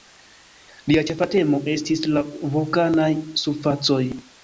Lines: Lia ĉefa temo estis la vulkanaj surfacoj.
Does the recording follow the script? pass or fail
pass